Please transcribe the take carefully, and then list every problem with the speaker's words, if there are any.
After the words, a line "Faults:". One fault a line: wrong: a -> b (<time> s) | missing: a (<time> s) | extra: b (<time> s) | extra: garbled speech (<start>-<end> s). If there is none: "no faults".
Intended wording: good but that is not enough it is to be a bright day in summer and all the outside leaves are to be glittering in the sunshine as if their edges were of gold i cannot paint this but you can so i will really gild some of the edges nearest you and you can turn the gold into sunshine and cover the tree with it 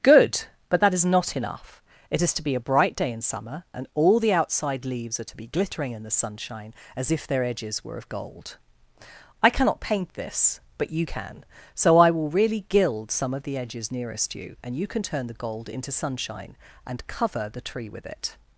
good but that is not enough it is to be a bright day in summer and all the outside leaves are to be glittering in the sunshine as if their edges were of gold i cannot paint this but you can so i will really gild some of the edges nearest you and you can turn the gold into sunshine and cover the tree with it
Faults:
no faults